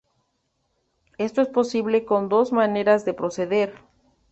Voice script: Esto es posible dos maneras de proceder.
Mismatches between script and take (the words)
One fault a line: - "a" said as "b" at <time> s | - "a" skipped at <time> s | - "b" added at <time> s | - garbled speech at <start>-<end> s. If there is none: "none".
- "con" added at 2.0 s